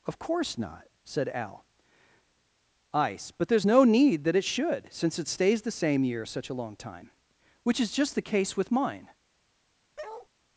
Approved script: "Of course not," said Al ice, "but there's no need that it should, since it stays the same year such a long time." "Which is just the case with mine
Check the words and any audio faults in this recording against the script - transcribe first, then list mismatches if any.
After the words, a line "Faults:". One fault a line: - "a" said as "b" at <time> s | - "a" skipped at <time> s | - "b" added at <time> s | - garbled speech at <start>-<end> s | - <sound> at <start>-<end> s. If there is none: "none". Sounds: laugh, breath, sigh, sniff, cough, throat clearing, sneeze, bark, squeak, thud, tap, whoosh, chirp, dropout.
"Of course not," said Al ice, "but there's no need that it should, since it stays the same year such a long time." "Which is just the case with mine
Faults:
- bark at 10.0-10.3 s